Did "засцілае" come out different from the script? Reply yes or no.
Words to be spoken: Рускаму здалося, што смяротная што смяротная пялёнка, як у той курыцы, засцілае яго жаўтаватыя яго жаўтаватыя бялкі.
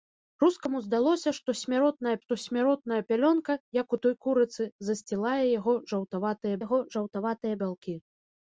no